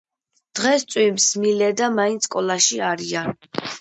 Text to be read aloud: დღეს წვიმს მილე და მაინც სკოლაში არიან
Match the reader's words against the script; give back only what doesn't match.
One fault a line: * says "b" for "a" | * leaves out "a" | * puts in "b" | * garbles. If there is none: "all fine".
all fine